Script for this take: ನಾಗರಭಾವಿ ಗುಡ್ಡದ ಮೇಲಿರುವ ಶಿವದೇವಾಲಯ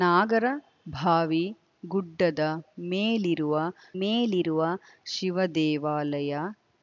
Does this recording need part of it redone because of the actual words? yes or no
yes